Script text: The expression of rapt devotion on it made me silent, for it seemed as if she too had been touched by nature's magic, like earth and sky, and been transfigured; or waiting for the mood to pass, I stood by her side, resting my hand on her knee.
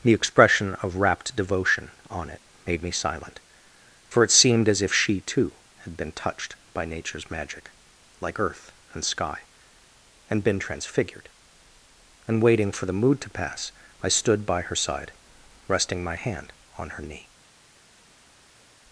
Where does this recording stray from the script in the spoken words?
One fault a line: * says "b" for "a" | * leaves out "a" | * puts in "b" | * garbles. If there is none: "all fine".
* says "and" for "or"